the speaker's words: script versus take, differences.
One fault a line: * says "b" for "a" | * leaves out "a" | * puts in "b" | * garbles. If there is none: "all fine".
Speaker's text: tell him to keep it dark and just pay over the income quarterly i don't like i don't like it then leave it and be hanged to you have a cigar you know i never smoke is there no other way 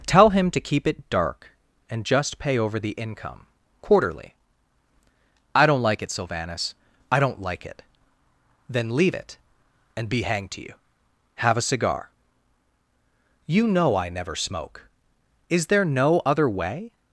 * puts in "it sylvanus"